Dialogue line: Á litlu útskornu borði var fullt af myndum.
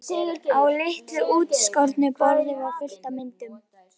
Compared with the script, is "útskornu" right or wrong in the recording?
right